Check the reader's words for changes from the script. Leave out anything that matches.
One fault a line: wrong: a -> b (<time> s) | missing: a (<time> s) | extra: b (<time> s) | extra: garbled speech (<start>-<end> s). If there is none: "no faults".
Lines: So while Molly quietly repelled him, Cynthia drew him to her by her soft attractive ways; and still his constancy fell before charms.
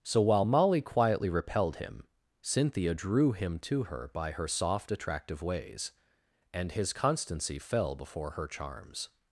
missing: still (6.7 s)
extra: her (8.3 s)